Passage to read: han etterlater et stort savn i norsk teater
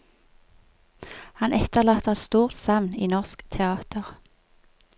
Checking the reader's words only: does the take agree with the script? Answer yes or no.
yes